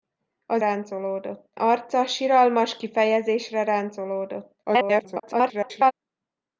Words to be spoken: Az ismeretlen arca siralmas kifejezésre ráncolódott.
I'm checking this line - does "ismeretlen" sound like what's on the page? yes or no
no